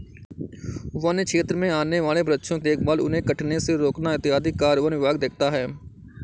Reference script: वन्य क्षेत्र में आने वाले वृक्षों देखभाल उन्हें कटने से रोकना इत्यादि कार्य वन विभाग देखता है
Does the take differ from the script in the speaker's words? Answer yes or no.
no